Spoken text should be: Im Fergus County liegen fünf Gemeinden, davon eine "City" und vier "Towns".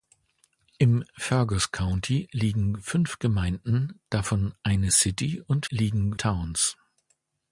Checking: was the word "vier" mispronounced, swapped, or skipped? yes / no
yes